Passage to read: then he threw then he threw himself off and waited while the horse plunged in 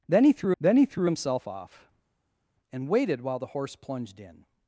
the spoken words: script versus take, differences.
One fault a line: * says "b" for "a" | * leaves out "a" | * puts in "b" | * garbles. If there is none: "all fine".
all fine